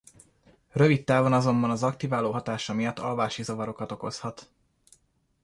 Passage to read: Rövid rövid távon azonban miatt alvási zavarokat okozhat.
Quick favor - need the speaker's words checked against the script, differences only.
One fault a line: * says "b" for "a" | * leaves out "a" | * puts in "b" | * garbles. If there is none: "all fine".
* leaves out "rövid"
* puts in "az aktiváló hatása"